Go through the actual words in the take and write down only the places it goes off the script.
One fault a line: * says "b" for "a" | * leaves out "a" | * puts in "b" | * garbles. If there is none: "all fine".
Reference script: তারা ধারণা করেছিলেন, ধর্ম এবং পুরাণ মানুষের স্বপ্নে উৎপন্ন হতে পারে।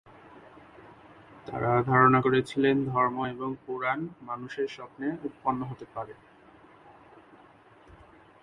all fine